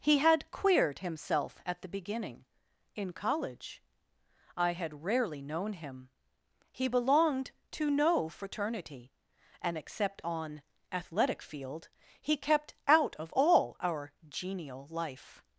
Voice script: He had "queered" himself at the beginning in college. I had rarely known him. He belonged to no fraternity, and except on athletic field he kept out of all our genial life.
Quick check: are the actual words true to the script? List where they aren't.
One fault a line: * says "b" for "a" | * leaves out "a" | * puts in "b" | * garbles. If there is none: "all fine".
all fine